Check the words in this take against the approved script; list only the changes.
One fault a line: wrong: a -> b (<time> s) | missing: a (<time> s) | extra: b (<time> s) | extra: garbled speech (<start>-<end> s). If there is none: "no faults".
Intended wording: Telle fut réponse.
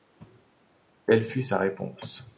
extra: sa (1.4 s)